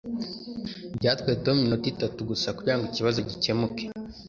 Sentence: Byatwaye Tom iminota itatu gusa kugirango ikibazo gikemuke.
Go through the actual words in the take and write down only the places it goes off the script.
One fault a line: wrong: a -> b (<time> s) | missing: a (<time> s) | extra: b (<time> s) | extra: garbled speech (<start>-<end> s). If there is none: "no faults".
no faults